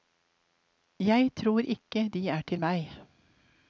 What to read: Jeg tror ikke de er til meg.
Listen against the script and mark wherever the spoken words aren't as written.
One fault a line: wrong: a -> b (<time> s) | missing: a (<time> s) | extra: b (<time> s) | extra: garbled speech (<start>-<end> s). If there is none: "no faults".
no faults